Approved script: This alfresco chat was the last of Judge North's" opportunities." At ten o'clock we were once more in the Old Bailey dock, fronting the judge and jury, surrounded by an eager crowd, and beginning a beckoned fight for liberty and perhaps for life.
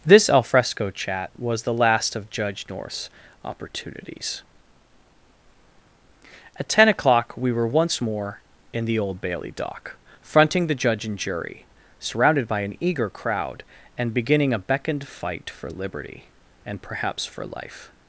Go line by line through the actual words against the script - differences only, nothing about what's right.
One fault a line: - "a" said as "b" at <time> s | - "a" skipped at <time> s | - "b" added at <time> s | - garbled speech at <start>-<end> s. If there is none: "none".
none